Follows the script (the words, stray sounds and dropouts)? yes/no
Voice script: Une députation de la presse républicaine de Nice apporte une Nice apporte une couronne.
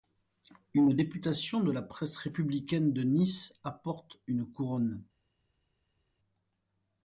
no